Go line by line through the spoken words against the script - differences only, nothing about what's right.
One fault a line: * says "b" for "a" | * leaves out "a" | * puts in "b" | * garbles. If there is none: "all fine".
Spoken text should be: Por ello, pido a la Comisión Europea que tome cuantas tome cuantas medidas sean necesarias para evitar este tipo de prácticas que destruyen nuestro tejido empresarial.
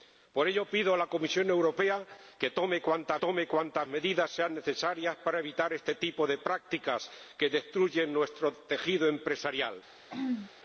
all fine